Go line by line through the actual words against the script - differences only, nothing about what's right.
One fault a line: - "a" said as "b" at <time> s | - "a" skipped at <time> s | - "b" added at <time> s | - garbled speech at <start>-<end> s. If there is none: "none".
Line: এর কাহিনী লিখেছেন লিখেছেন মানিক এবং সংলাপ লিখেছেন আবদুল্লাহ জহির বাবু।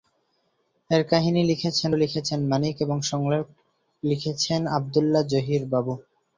none